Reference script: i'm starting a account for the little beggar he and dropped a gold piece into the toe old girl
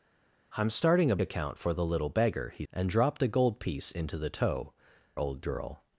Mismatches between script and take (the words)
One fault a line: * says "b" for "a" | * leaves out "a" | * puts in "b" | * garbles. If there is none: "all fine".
all fine